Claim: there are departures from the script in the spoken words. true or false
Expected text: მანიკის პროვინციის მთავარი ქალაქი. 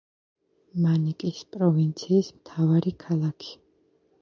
false